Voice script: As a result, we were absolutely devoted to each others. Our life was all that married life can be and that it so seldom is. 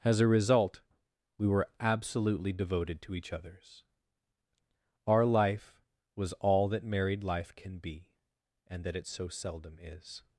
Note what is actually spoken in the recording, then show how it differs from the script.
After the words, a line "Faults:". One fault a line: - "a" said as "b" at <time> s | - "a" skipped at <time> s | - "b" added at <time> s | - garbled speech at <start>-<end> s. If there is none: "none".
As a result, we were absolutely devoted to each others. Our life was all that married life can be and that it so seldom is.
Faults:
none